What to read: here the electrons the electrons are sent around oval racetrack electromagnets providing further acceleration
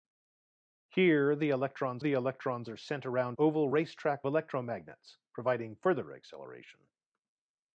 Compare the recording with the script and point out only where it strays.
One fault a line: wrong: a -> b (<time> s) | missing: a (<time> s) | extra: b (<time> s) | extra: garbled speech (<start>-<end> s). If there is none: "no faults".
no faults